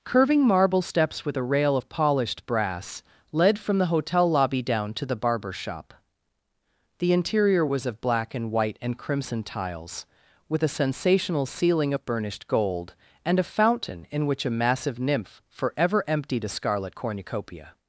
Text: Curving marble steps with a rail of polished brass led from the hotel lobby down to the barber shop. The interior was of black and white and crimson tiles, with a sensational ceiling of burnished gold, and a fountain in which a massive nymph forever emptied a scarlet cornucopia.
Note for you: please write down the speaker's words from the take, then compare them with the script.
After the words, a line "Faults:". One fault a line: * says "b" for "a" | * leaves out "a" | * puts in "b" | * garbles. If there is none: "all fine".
Curving marble steps with a rail of polished brass led from the hotel lobby down to the barber shop. The interior was of black and white and crimson tiles, with a sensational ceiling of burnished gold, and a fountain in which a massive nymph forever emptied a scarlet cornucopia.
Faults:
all fine